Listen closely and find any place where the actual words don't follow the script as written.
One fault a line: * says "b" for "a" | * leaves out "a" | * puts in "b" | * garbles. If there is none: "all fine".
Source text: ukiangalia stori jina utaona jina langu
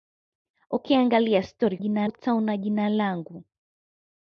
all fine